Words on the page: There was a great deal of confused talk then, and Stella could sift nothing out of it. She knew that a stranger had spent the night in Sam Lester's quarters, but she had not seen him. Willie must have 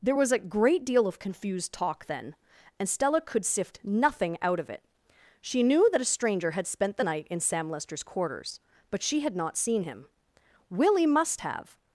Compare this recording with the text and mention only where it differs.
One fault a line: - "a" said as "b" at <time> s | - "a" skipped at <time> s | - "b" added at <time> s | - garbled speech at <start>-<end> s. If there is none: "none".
none